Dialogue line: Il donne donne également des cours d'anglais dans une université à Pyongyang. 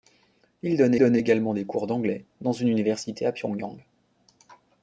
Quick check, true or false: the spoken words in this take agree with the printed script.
true